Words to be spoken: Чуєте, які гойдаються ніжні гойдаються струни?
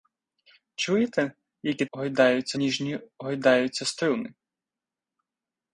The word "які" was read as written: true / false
true